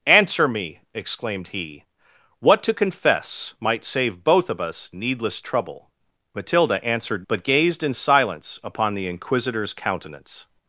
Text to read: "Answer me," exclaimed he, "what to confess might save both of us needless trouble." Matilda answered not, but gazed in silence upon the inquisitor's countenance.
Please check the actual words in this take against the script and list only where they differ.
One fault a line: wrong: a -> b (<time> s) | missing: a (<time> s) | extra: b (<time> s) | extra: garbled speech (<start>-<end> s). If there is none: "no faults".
missing: not (7.3 s)